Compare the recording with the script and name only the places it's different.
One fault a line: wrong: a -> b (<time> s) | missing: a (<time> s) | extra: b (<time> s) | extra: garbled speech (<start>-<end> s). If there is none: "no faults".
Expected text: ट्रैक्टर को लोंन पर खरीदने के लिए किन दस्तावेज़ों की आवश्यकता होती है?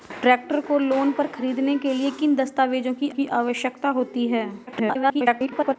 extra: की (3.1 s)
extra: garbled speech (4.7-5.8 s)